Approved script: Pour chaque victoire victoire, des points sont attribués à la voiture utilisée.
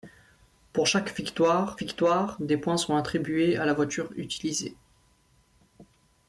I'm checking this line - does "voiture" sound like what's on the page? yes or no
yes